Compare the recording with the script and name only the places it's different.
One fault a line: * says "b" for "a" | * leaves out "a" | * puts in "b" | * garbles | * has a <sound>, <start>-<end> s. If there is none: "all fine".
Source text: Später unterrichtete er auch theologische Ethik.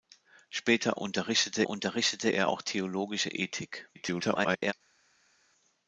* puts in "unterrichtete"
* garbles